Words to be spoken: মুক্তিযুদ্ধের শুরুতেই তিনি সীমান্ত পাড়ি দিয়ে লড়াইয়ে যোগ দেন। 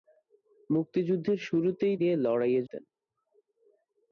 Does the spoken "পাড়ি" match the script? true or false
false